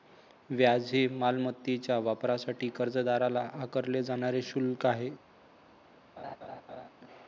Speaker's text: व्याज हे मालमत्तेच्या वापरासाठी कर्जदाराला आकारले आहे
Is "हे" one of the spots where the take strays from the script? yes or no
no